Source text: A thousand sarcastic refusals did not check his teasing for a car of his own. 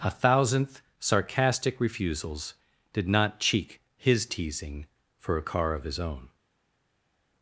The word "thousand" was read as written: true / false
false